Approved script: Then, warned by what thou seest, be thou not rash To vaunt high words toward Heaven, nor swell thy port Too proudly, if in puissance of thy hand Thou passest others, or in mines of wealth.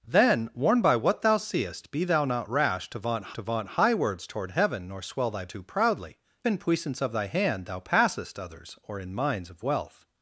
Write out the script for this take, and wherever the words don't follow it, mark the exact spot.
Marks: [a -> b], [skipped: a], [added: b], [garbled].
Then, warned by what thou seest, be thou not rash To vaunt [added: To vaunt] high words toward Heaven, nor swell thy [skipped: port] Too proudly, [skipped: if] in puissance of thy hand Thou passest others, or in mines of wealth.